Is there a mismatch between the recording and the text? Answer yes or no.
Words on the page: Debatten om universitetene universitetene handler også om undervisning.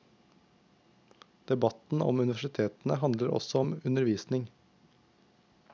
yes